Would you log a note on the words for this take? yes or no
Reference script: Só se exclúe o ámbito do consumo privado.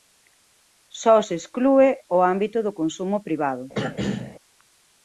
no